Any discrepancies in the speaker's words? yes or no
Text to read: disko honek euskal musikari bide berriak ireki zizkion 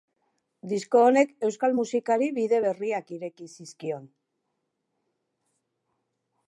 no